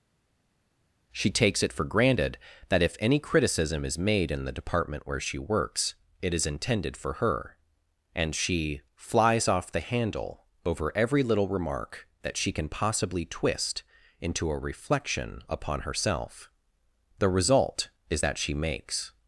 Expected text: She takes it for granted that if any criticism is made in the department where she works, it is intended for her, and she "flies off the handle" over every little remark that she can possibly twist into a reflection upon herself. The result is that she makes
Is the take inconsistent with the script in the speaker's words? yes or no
no